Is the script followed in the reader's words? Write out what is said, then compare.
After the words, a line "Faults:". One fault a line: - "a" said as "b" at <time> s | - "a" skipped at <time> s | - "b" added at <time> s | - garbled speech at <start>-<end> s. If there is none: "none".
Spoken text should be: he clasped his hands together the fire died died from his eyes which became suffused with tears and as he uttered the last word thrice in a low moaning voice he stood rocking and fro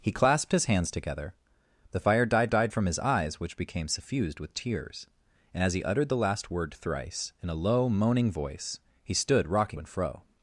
he clasped his hands together the fire died died from his eyes which became suffused with tears and as he uttered the last word thrice in a low moaning voice he stood rocking and fro
Faults:
none